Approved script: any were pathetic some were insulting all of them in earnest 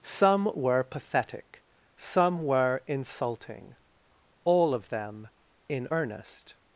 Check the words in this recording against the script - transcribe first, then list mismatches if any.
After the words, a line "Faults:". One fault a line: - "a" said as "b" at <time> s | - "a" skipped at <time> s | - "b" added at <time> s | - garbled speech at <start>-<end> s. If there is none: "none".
some were pathetic some were insulting all of them in earnest
Faults:
- "any" said as "some" at 0.0 s